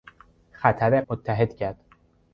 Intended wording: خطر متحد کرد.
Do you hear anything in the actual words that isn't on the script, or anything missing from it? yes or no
no